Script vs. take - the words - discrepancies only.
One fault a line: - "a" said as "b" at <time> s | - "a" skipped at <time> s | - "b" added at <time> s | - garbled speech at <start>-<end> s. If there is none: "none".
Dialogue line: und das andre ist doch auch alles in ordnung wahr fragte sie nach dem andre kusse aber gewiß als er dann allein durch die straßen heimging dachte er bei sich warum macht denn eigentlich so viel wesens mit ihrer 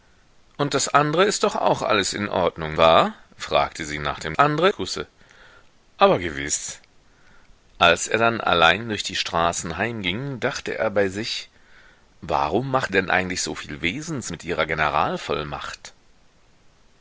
none